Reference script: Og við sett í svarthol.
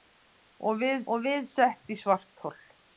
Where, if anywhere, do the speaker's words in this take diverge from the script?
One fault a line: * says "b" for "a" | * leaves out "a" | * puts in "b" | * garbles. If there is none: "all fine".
* puts in "og við"